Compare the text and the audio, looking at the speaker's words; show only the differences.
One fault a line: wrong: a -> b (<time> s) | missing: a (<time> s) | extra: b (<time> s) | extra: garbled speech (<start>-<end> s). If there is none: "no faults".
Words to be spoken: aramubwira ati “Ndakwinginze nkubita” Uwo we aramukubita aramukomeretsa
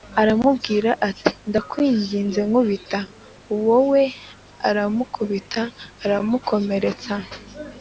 no faults